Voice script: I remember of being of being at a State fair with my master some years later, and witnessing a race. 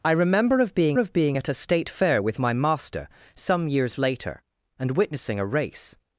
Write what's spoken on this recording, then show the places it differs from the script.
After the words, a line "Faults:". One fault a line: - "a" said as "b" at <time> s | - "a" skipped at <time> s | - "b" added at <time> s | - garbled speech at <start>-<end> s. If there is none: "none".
I remember of being of being at a State fair with my master some years later, and witnessing a race.
Faults:
none